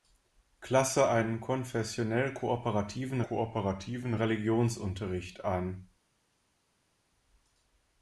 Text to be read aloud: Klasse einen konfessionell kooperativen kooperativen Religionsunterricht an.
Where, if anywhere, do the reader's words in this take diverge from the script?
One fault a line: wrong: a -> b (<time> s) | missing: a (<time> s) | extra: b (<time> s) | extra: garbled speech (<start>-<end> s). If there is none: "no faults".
no faults